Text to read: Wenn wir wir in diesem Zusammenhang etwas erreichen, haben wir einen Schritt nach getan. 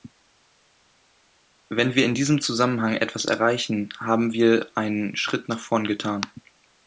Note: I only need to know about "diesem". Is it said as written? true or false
true